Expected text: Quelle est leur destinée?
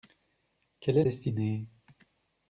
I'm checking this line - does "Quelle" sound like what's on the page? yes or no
yes